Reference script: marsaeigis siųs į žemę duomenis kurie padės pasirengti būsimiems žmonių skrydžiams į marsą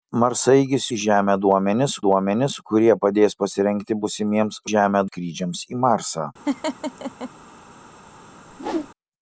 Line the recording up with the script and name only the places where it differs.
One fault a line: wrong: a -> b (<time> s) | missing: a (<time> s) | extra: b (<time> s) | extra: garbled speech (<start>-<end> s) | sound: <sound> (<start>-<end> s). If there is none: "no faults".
missing: siųs (0.8 s)
extra: duomenis (2.0 s)
wrong: žmonių -> žemę (4.7 s)
sound: laugh (6.5-7.3 s)
sound: whoosh (8.5-8.9 s)